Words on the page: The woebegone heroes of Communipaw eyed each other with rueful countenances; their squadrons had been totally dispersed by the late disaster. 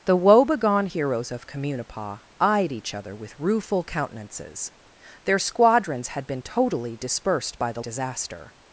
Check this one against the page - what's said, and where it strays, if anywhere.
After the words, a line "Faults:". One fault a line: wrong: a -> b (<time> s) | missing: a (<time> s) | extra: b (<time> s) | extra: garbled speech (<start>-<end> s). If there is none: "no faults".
The woebegone heroes of Communipaw eyed each other with rueful countenances; their squadrons had been totally dispersed by the disaster.
Faults:
missing: late (7.8 s)